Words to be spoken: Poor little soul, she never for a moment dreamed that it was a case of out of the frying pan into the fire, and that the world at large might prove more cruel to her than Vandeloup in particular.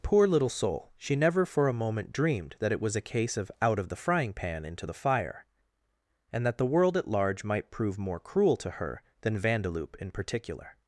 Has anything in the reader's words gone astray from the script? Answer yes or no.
no